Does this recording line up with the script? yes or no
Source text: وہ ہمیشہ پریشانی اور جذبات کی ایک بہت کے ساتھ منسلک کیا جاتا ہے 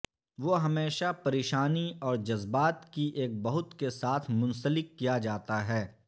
yes